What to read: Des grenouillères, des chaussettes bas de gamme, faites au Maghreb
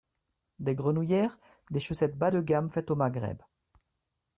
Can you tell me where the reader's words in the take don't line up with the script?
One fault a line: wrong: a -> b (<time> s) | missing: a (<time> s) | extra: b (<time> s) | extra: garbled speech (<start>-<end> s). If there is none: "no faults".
no faults